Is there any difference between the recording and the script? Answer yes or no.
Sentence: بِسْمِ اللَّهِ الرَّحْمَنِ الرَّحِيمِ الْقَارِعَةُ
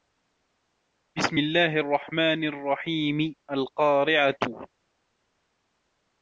no